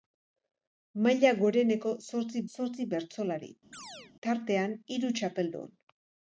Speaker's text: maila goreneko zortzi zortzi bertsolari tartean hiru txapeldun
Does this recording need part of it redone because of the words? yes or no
no